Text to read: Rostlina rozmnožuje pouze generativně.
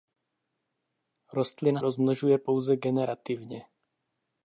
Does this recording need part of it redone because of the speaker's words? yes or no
no